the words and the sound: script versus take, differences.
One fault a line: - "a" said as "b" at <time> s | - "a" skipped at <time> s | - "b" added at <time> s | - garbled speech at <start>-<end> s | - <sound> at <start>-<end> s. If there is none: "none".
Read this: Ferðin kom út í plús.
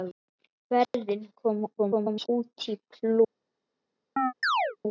- dropout at 0.8-0.9 s
- garbled speech at 1.8-2.3 s
- chirp at 4.2-4.8 s